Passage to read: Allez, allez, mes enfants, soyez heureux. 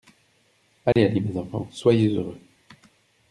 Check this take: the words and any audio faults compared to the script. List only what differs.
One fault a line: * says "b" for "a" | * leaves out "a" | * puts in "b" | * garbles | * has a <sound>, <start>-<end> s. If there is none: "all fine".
* has a dropout, 0.9-1.0 s